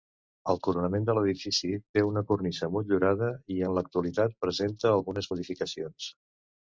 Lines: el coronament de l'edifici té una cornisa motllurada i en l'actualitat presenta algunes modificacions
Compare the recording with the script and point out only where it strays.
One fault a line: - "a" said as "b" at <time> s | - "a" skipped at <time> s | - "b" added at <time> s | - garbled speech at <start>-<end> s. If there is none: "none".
none